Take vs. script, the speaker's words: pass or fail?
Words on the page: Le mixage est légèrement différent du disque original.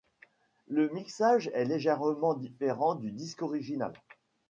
pass